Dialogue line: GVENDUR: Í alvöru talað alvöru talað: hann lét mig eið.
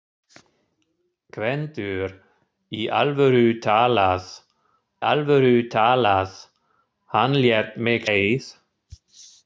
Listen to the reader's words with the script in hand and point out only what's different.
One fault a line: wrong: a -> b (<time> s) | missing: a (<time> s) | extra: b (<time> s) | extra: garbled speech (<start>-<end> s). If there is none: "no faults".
no faults